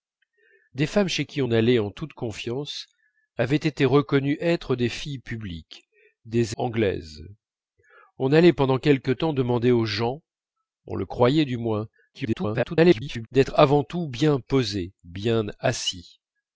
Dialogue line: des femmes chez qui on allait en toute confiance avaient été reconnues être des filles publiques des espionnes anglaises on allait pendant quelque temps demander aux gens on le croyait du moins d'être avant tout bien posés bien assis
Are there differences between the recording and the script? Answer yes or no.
yes